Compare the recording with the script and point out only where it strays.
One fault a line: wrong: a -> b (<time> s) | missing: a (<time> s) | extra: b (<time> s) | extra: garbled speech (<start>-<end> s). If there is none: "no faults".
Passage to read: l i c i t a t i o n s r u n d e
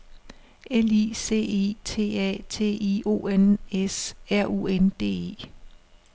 no faults